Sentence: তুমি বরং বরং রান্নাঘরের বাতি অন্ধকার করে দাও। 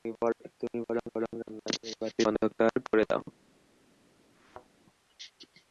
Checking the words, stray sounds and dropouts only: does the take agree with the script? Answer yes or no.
no